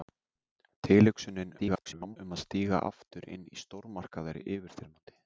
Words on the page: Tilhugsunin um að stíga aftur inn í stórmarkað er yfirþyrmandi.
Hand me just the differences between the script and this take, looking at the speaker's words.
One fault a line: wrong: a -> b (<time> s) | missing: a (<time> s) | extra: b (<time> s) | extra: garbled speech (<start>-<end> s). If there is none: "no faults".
extra: garbled speech (1.6-2.2 s)